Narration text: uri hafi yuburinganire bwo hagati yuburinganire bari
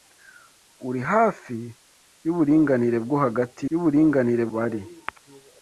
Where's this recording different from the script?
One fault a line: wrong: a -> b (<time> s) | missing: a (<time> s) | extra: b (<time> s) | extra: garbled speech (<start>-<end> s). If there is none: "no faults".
no faults